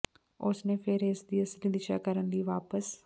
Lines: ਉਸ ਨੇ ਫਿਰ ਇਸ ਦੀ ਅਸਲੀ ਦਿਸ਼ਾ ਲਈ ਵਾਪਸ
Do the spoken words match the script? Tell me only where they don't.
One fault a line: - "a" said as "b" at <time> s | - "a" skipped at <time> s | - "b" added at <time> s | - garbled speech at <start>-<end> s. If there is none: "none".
- "ਕਰਨ" added at 2.0 s